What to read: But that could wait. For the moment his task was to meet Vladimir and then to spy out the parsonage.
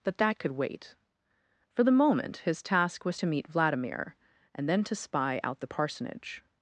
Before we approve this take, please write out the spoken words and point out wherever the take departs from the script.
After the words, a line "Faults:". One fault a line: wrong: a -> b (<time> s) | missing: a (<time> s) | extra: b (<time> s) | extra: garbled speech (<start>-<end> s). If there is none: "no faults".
But that could wait. For the moment his task was to meet Vladimir and then to spy out the parsonage.
Faults:
no faults